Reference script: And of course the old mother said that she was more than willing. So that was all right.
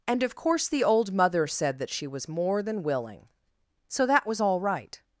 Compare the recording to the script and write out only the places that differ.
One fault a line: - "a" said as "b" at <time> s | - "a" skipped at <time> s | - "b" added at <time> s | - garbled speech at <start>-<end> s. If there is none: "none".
none